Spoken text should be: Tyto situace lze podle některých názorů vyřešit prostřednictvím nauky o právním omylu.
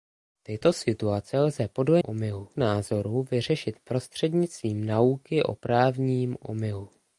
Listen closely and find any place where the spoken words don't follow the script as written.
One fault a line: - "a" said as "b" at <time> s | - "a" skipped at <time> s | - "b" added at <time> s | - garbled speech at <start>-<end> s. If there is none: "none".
- "některých" said as "omylu" at 2.0 s